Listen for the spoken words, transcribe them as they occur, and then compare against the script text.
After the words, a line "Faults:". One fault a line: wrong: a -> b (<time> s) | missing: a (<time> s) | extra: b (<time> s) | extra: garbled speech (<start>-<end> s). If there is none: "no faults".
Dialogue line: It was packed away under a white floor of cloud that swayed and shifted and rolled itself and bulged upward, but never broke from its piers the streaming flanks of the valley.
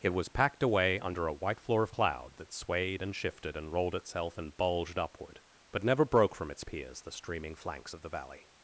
It was packed away under a white floor of cloud that swayed and shifted and rolled itself and bulged upward, but never broke from its piers the streaming flanks of the valley.
Faults:
no faults